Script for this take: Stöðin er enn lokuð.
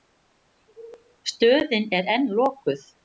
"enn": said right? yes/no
yes